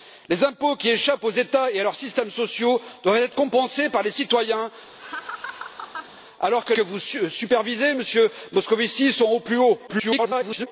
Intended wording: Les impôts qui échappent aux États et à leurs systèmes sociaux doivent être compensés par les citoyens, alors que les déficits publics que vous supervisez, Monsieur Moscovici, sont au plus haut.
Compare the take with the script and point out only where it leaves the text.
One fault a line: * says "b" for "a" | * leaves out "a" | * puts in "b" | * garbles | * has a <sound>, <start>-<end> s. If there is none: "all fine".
* has a laugh, 5.0-6.2 s
* leaves out "les déficits publics"
* garbles